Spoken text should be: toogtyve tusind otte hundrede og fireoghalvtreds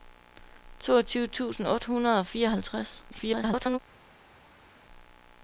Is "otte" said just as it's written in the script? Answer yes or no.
yes